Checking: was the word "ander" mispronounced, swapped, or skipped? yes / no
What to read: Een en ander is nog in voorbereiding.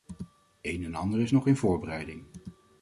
no